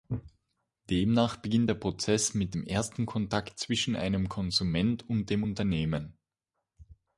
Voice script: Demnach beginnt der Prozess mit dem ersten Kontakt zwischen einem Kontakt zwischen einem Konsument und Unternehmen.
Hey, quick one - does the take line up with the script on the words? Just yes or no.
no